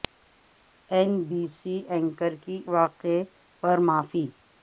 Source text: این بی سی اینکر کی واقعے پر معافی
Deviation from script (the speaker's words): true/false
false